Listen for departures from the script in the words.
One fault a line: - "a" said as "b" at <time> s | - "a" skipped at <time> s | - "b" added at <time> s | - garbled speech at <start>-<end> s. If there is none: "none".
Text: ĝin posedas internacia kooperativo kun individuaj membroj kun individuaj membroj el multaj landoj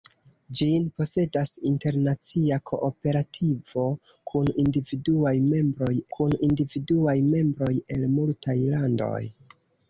none